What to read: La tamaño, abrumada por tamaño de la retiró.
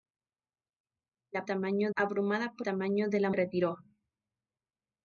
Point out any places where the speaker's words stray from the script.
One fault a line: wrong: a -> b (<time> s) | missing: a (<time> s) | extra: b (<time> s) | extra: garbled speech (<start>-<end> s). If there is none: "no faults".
no faults